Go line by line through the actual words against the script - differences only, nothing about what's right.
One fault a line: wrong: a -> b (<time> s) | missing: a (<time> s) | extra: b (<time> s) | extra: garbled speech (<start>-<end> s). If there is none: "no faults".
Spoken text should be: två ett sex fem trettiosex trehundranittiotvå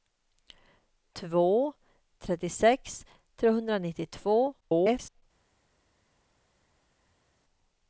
missing: ett sex fem (1.7 s)
extra: garbled speech (4.6-5.2 s)